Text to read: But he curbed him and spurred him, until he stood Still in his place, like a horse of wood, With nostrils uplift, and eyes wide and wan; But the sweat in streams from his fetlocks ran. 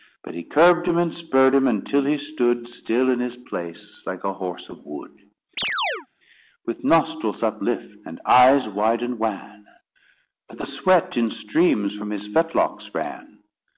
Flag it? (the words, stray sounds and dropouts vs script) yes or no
yes